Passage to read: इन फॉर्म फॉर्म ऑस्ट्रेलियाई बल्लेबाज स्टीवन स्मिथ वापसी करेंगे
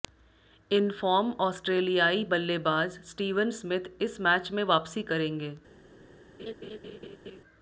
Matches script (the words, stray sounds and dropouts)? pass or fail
fail